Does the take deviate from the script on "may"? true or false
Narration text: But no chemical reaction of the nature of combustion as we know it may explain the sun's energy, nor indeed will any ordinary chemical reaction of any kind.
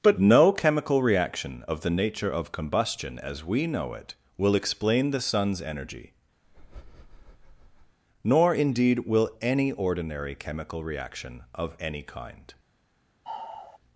true